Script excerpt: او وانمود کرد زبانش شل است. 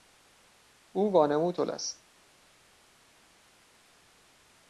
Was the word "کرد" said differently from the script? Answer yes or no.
yes